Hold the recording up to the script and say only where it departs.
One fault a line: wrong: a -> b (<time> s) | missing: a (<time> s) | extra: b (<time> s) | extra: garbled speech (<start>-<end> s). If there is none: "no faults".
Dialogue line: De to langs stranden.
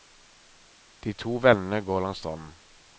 extra: vennene går (1.4 s)